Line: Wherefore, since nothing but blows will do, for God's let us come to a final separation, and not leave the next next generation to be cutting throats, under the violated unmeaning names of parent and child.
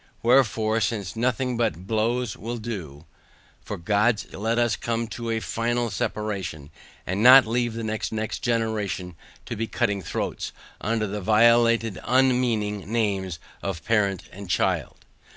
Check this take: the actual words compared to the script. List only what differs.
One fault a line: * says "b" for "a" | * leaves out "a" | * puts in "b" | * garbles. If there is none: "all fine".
all fine